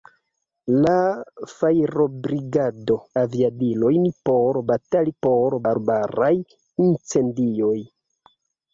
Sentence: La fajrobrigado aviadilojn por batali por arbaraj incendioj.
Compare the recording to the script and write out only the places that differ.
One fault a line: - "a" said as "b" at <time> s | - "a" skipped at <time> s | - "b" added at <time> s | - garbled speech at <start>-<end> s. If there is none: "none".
none